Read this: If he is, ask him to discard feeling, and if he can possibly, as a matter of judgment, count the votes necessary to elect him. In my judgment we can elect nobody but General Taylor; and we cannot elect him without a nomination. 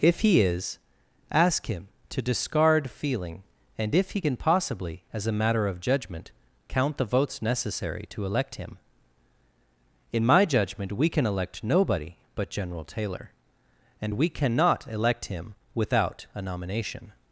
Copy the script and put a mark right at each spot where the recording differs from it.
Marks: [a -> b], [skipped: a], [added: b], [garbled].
If he is, ask him to discard feeling, and if he can possibly, as a matter of judgment, count the votes necessary to elect him. In my judgment we can elect nobody but General Taylor; and we cannot elect him without a nomination.